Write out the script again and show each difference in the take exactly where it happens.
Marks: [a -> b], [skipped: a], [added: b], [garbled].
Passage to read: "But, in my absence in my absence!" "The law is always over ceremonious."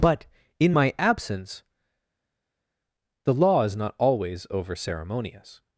"But, in my absence [skipped: in my absence!"] "The law is [added: not] always over ceremonious."